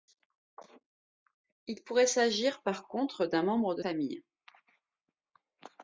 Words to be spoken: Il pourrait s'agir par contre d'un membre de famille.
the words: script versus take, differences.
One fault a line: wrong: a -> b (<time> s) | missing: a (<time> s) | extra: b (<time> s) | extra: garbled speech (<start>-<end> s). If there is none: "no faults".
no faults